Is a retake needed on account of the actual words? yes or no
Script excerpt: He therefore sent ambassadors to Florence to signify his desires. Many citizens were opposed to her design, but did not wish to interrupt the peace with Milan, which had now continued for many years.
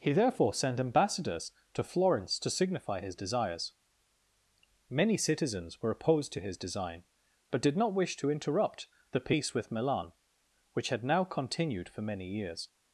yes